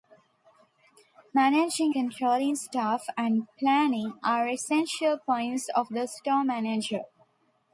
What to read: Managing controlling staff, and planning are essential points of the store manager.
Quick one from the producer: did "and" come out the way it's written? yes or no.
yes